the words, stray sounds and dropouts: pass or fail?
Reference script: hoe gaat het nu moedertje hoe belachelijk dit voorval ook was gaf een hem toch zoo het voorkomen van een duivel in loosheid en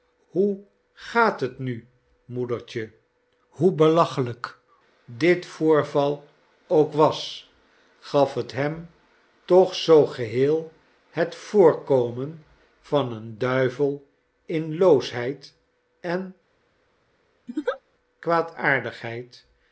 fail